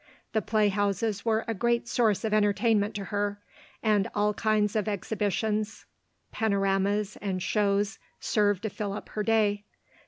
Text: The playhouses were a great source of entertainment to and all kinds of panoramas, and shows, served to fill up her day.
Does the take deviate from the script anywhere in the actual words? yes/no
yes